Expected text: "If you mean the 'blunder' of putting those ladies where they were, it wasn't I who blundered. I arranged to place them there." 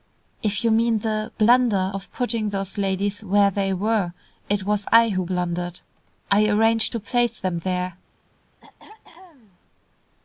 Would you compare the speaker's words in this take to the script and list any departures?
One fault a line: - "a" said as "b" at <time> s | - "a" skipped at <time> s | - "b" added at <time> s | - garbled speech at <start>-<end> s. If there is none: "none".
- "wasn't" said as "was" at 4.6 s